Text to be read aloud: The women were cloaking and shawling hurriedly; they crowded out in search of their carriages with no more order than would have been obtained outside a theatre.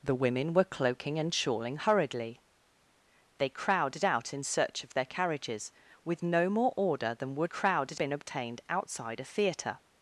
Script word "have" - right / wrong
wrong